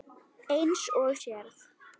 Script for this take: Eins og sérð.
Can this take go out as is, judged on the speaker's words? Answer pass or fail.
pass